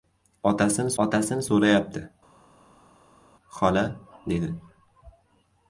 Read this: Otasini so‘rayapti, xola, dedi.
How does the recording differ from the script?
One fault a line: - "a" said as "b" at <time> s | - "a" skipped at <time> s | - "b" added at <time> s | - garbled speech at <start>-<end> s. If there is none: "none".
- "otasini" added at 1.0 s